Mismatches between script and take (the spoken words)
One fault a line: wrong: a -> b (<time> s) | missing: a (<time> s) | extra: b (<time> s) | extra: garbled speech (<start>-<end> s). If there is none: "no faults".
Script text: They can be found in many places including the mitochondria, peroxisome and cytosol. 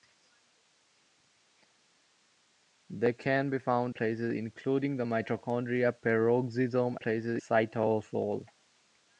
missing: in many (3.9 s)
wrong: and -> places (6.9 s)